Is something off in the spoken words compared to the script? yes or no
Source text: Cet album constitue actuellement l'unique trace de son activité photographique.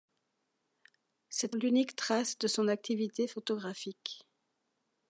yes